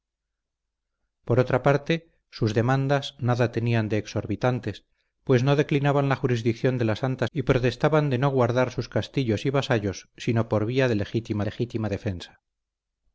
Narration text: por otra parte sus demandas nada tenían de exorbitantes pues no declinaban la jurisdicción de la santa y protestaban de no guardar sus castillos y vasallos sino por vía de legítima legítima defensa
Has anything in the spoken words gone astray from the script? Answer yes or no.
no